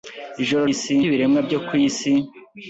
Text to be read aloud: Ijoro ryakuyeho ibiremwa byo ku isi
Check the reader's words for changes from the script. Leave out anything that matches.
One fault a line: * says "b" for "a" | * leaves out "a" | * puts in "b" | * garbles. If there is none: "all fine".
* says "isi" for "ryakuyeho"